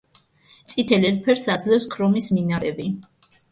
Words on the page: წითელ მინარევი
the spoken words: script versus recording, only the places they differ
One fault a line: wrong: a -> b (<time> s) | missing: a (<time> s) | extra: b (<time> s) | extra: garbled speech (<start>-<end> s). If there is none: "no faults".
extra: ელფერს აძლევს ქრომის (1.1 s)